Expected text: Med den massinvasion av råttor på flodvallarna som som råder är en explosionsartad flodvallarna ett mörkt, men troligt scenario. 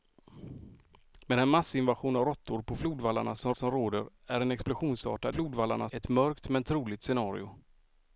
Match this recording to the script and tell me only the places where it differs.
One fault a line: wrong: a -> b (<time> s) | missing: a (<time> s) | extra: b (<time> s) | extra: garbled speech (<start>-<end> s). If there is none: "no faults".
no faults